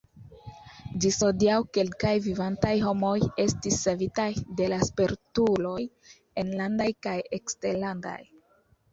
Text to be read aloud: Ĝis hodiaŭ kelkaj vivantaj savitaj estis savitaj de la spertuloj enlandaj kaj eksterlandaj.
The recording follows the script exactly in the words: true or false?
false